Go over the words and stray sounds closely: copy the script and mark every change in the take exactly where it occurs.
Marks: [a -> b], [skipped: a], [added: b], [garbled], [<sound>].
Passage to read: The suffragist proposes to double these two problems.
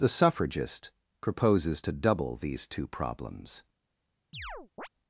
The suffragist proposes to double these two problems. [chirp]